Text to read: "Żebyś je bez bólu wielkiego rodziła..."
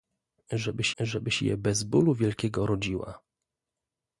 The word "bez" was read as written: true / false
true